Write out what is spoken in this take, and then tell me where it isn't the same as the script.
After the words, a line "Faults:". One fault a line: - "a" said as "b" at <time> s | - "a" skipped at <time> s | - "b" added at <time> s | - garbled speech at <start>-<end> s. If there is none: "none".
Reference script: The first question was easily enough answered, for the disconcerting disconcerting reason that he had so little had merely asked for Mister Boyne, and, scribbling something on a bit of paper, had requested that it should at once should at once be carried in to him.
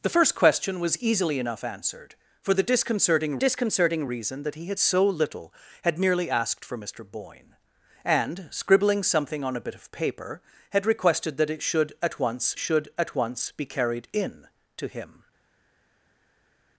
The first question was easily enough answered, for the disconcerting disconcerting reason that he had so little had merely asked for Mister Boyne, and, scribbling something on a bit of paper, had requested that it should at once should at once be carried in to him.
Faults:
none